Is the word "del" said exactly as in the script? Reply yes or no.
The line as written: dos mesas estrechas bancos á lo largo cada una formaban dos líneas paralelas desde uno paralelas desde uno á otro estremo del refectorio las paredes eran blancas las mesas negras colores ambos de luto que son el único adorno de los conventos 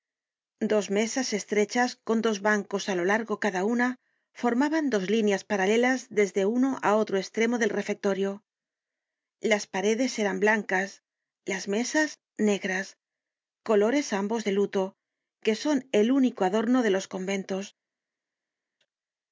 yes